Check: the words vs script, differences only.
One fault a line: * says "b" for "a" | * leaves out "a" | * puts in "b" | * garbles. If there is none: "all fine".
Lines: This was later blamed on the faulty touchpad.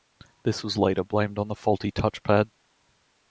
all fine